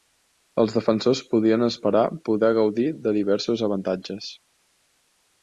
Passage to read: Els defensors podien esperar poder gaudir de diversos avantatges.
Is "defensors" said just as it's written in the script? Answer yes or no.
yes